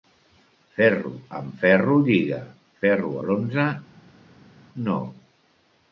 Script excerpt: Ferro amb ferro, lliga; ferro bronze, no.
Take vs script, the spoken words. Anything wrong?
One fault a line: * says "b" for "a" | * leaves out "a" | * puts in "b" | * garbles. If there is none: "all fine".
all fine